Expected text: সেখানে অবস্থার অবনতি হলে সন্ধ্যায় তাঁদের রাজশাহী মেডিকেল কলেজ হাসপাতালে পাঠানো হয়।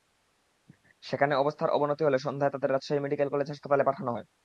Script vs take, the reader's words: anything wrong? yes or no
no